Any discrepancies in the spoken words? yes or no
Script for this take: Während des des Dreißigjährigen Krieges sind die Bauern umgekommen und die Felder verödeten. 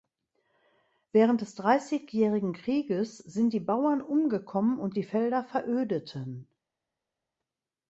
yes